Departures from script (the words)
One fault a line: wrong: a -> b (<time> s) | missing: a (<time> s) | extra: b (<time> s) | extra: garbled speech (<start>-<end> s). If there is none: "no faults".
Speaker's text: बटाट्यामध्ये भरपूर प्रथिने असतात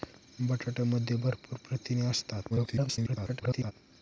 extra: garbled speech (2.5-3.7 s)